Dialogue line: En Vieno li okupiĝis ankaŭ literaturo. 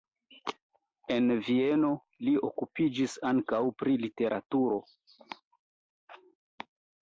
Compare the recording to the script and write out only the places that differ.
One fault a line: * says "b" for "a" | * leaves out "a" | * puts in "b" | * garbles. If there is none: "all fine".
* puts in "pri"